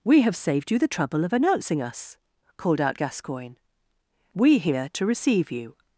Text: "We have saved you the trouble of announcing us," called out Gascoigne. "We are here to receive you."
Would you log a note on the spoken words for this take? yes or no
yes